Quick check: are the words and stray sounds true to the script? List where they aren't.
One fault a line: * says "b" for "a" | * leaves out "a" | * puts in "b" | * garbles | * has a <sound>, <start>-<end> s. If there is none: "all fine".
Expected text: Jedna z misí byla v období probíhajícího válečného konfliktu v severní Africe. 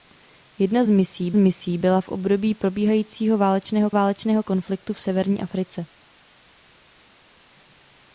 * puts in "misí"
* puts in "válečného"